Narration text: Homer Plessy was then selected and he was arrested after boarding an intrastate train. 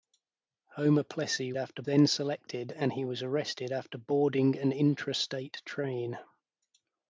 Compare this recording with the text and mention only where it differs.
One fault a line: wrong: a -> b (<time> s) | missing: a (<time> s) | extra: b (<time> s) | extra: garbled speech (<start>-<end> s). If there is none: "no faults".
wrong: was -> after (1.6 s)